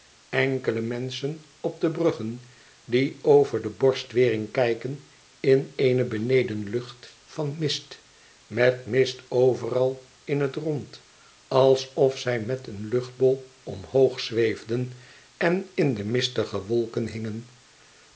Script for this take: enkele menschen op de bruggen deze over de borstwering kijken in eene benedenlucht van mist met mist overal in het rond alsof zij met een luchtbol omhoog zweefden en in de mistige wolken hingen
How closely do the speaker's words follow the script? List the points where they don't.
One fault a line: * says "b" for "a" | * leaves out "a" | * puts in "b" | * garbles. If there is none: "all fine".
* says "die" for "deze"